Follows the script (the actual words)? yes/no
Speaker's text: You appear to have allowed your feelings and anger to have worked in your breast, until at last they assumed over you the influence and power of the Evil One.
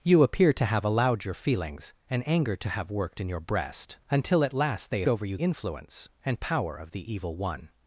no